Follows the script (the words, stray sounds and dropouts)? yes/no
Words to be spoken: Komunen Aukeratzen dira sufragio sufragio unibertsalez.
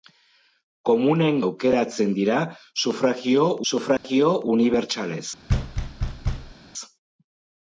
no